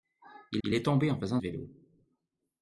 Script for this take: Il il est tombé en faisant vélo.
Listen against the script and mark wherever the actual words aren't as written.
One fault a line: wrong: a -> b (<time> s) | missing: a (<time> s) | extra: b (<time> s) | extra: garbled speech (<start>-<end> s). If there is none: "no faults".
no faults